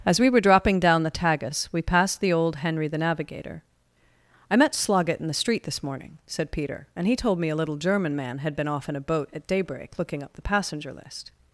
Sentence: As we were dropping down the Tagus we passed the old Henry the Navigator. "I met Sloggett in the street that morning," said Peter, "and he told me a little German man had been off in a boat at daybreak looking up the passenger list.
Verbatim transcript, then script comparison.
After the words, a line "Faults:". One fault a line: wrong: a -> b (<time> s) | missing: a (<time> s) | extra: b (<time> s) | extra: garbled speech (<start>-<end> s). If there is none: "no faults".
As we were dropping down the Tagus we passed the old Henry the Navigator. "I met Sloggett in the street this morning," said Peter, "and he told me a little German man had been off in a boat at daybreak looking up the passenger list.
Faults:
wrong: that -> this (5.6 s)